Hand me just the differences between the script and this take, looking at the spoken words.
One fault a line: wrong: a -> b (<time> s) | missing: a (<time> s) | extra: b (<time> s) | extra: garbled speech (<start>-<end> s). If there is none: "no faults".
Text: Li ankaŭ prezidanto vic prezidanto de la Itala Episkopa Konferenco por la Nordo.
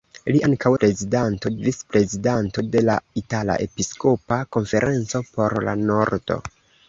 no faults